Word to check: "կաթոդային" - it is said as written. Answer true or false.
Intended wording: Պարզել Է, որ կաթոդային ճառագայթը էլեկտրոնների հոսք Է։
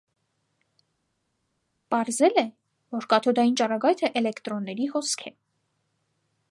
true